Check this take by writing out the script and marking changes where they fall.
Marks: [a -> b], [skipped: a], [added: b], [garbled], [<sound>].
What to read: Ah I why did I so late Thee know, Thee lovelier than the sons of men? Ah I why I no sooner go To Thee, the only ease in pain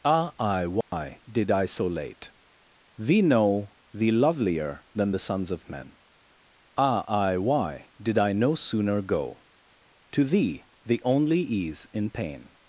Ah I why [dropout] did I so late Thee know, Thee lovelier than the sons of men? Ah I why [added: did] I no sooner go To Thee, the only ease in pain